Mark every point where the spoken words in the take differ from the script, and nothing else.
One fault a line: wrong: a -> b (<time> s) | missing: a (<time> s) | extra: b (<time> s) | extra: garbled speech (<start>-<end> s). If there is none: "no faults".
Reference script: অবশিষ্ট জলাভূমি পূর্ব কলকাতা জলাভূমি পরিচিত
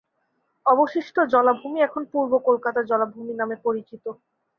extra: এখন (1.8 s)
extra: নামে (3.4 s)